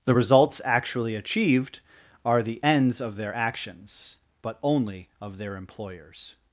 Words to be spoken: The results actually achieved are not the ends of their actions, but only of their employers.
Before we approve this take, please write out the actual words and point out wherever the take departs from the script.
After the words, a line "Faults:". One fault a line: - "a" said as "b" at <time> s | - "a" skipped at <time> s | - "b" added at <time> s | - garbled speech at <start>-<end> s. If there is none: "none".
The results actually achieved are the ends of their actions, but only of their employers.
Faults:
- "not" skipped at 2.4 s